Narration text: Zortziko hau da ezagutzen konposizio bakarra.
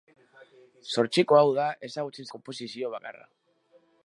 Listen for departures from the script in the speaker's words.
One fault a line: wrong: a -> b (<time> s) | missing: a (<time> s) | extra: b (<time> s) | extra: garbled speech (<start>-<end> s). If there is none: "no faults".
no faults